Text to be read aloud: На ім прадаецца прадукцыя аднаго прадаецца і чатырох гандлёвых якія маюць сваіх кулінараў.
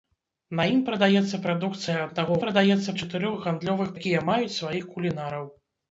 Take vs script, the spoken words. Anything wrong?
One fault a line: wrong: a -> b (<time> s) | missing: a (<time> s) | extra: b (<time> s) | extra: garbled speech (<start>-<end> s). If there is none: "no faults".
no faults